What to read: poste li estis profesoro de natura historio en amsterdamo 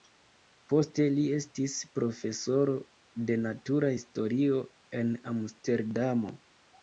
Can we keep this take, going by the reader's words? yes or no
yes